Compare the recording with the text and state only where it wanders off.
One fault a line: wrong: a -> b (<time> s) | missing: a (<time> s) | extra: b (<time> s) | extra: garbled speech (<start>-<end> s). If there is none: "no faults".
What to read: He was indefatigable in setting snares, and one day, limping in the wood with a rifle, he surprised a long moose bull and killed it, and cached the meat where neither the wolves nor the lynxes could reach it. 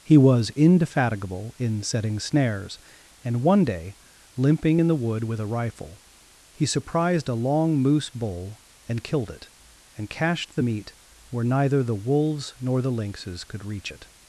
no faults